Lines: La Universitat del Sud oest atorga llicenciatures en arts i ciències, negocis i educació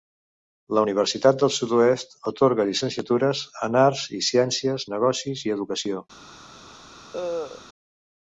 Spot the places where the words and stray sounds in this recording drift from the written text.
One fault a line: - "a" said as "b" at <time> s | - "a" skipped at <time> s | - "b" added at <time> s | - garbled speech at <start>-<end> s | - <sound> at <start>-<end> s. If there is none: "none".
- cough at 7.1-7.6 s